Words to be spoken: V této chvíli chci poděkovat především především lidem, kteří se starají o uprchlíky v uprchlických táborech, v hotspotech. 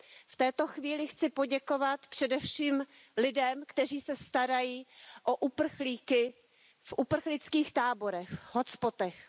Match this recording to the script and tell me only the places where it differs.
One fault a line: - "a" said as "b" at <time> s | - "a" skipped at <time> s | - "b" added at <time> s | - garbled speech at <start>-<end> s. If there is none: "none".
- "především" skipped at 2.9 s